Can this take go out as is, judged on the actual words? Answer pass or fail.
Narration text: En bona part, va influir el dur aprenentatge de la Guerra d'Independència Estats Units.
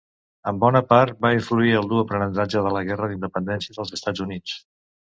fail